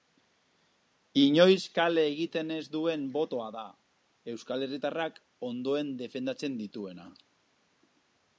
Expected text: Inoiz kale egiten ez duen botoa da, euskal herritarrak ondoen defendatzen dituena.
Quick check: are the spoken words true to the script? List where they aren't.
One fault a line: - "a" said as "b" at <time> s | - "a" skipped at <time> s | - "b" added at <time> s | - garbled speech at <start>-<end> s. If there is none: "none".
none